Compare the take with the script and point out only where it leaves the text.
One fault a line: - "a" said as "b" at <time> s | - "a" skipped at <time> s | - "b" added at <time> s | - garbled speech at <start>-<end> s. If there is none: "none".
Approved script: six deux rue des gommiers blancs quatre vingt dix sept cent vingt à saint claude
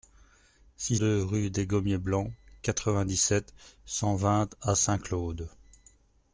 none